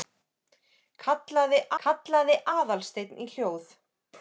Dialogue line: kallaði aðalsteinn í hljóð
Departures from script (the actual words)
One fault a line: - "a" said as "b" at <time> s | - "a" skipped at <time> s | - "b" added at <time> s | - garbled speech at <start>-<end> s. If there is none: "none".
- "kallaði" added at 1.8 s